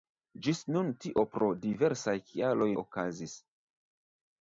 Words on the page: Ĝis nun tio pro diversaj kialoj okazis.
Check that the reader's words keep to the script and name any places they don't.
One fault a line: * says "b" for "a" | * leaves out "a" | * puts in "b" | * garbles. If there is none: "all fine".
all fine